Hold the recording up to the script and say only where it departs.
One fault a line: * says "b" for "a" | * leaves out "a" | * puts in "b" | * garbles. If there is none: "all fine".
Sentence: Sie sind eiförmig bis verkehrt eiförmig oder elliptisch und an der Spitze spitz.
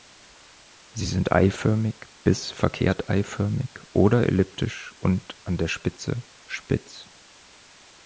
all fine